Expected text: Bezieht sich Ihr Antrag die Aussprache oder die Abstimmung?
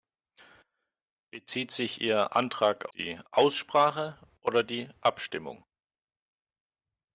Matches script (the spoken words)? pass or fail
pass